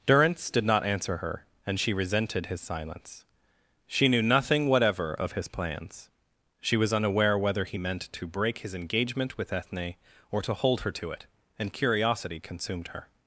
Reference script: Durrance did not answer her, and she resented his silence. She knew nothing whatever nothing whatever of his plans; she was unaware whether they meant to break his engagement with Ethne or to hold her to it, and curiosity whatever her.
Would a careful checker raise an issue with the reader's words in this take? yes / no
yes